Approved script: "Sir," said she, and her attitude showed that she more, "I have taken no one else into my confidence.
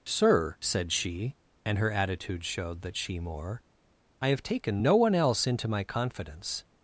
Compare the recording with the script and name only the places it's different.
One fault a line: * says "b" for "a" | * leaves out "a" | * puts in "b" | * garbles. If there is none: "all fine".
all fine